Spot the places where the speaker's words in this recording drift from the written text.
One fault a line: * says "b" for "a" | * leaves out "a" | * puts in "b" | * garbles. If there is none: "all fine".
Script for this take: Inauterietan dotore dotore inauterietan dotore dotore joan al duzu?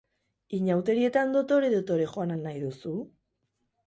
* leaves out "inauterietan dotore dotore"
* puts in "nahi"